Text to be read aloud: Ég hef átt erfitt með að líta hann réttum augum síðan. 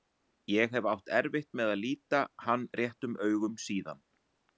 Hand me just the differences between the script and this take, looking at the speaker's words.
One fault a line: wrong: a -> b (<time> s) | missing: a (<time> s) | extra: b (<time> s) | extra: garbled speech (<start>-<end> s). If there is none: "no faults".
no faults